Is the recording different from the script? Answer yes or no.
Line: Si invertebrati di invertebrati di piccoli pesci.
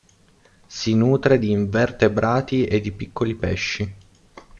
yes